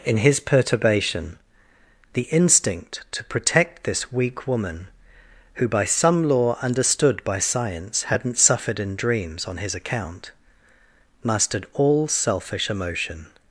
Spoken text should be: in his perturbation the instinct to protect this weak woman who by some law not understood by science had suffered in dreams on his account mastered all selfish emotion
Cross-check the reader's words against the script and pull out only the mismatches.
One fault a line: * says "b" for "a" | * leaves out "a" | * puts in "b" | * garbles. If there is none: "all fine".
* leaves out "not"
* says "hadn't" for "had"